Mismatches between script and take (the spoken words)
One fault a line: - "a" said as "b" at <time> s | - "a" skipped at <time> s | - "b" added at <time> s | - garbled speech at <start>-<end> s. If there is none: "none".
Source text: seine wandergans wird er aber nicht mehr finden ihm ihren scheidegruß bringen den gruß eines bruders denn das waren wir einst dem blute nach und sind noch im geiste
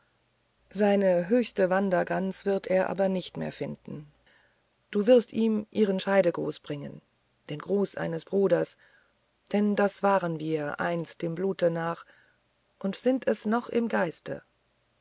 - "höchste" added at 1.3 s
- "du wirst" added at 4.9 s
- "es" added at 13.3 s